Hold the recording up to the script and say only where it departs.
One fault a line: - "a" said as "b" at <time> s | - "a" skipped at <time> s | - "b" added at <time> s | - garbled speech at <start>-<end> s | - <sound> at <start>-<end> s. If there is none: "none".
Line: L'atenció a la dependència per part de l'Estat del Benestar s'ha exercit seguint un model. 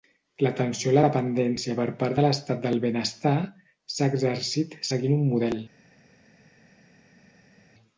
none